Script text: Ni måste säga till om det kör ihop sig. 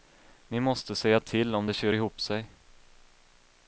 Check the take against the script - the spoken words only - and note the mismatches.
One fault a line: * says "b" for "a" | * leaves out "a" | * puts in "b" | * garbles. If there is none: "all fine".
all fine